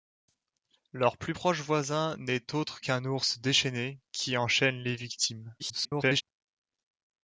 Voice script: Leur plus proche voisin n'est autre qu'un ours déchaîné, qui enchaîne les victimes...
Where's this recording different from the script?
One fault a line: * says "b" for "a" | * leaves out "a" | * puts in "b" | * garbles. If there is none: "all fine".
* garbles